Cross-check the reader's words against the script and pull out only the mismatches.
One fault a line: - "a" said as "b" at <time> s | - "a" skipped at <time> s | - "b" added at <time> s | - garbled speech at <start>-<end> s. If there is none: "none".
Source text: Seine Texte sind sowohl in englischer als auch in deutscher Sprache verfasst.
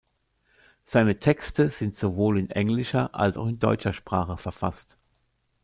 none